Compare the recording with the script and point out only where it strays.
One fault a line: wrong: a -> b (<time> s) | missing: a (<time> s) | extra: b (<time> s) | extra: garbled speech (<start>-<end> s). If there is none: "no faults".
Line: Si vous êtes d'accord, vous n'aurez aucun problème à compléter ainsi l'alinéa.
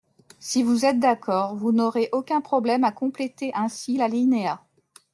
no faults